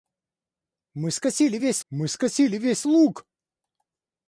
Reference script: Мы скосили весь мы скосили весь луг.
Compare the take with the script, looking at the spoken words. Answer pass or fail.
pass